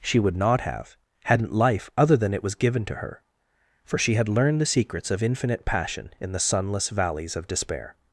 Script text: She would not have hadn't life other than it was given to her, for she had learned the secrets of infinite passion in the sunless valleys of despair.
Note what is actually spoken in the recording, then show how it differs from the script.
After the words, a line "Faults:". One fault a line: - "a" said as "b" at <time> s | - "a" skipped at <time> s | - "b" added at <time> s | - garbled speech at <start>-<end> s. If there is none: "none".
She would not have hadn't life other than it was given to her, for she had learned the secrets of infinite passion in the sunless valleys of despair.
Faults:
none